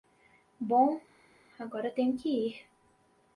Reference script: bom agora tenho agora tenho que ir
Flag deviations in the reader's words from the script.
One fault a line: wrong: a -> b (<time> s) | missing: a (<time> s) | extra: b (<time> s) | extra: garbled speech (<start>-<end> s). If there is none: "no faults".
missing: agora tenho (2.2 s)